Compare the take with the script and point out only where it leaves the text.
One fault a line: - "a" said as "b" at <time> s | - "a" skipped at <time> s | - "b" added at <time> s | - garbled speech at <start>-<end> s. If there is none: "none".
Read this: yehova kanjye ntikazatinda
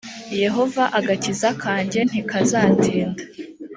- "agakiza" added at 1.0 s